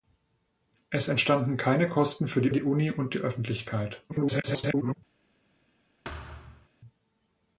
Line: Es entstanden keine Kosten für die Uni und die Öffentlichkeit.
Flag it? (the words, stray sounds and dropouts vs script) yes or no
yes